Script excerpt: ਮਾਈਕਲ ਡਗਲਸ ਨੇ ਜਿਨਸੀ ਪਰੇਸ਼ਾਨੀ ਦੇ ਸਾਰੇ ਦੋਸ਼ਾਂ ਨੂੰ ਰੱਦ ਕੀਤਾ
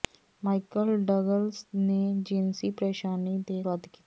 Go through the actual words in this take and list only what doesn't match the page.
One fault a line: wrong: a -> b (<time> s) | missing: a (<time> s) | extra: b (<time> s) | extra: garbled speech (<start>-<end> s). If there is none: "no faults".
missing: ਸਾਰੇ ਦੋਸ਼ਾਂ ਨੂੰ (3.6 s)